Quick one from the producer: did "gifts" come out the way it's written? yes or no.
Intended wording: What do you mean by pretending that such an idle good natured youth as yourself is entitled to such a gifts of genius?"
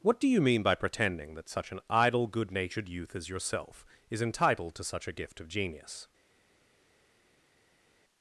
no